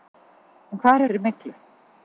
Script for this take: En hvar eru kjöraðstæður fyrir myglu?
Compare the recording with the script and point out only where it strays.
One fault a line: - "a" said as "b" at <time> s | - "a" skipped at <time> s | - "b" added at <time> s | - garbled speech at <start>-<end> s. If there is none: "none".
- "eru kjöraðstæður" skipped at 1.0 s